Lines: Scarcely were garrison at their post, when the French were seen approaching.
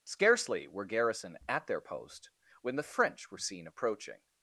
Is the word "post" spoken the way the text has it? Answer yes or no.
yes